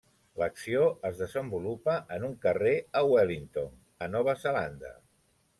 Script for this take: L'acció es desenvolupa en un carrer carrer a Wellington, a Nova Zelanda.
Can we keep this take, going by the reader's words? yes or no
no